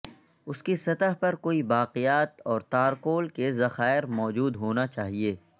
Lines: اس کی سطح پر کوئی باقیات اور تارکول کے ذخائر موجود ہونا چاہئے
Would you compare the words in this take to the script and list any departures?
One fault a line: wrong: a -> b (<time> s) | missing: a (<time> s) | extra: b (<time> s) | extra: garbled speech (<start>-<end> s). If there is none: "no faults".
no faults